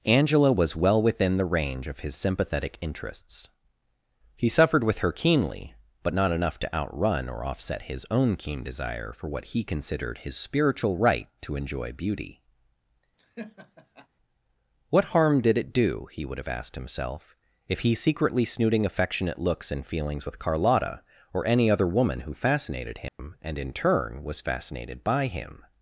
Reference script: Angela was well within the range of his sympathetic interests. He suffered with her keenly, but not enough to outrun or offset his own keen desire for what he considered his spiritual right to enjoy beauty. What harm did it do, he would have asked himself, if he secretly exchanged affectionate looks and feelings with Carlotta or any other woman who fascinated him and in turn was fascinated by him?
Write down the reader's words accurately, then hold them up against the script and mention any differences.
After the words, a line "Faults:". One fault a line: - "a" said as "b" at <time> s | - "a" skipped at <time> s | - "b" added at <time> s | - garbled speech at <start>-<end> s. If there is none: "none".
Angela was well within the range of his sympathetic interests. He suffered with her keenly, but not enough to outrun or offset his own keen desire for what he considered his spiritual right to enjoy beauty. What harm did it do, he would have asked himself, if he secretly snooting affectionate looks and feelings with Carlotta or any other woman who fascinated him and in turn was fascinated by him?
Faults:
- "exchanged" said as "snooting" at 18.4 s